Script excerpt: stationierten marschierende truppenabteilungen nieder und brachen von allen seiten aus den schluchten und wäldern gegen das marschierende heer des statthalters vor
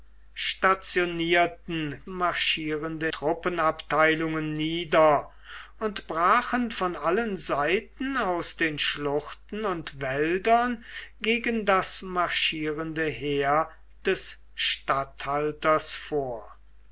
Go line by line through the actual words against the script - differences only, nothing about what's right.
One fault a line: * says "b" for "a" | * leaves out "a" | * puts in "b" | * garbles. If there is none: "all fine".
all fine